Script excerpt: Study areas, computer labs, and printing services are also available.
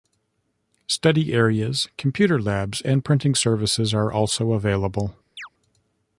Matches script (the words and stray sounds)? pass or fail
fail